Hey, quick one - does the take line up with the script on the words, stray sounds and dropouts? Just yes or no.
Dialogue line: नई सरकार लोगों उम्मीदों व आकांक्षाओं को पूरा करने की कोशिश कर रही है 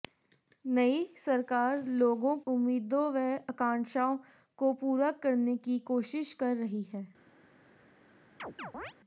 no